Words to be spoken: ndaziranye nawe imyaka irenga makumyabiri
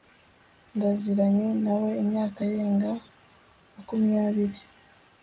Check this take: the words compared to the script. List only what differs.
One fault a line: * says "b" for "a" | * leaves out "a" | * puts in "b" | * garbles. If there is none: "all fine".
all fine